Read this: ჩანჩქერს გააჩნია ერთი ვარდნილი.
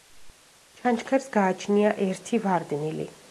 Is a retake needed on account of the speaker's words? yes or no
no